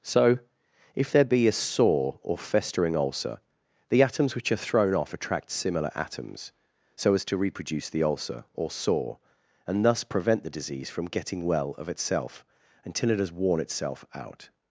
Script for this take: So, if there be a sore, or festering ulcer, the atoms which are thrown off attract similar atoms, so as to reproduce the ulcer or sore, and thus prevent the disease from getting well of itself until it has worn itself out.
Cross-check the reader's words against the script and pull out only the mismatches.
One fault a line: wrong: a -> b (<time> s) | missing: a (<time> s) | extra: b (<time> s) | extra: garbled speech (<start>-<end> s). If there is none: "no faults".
no faults